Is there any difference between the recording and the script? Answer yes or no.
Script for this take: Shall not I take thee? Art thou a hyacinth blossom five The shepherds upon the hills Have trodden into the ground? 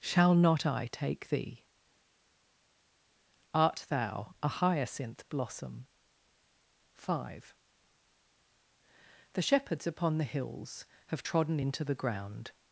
no